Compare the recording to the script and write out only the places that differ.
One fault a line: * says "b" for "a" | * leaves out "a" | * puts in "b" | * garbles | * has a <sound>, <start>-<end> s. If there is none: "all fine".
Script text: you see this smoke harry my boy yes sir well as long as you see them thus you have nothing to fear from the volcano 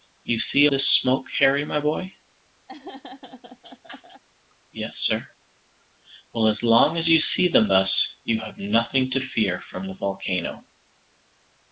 * has a laugh, 2.7-4.2 s